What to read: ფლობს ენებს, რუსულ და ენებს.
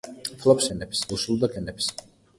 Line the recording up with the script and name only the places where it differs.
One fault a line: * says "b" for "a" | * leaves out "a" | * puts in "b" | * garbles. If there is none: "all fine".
all fine